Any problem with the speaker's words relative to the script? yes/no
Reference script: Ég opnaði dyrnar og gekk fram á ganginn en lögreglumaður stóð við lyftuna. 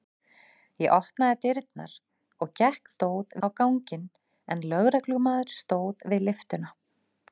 yes